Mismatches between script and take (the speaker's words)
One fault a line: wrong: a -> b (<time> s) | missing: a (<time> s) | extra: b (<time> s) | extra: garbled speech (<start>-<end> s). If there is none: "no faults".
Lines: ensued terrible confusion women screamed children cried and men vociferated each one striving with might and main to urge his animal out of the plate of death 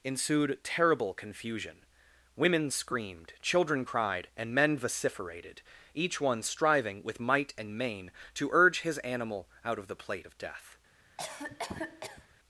no faults